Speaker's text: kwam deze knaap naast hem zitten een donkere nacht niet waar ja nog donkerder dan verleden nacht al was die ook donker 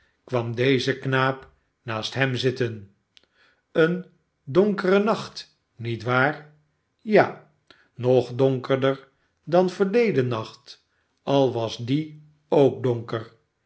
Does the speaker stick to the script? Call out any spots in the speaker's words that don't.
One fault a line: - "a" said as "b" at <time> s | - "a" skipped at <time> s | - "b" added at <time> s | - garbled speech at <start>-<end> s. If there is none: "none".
none